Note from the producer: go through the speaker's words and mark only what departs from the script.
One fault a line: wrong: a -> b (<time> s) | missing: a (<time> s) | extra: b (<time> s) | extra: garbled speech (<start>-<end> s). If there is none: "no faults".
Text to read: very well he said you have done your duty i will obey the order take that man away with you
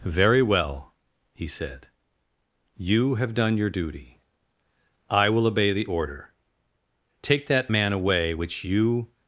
wrong: with -> which (8.3 s)